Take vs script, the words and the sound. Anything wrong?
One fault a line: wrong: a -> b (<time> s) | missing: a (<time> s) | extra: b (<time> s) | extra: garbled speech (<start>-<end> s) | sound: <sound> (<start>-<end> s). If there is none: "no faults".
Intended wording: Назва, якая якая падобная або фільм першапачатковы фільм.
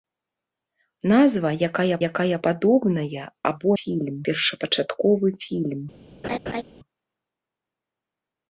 sound: laugh (6.2-6.6 s)